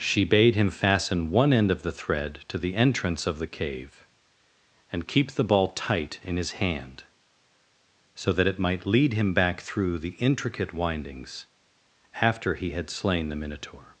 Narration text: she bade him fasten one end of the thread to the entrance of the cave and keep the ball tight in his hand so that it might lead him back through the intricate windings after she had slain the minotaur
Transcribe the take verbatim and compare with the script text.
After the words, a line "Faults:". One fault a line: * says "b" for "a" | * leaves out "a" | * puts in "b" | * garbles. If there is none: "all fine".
she bade him fasten one end of the thread to the entrance of the cave and keep the ball tight in his hand so that it might lead him back through the intricate windings after he had slain the minotaur
Faults:
* says "he" for "she"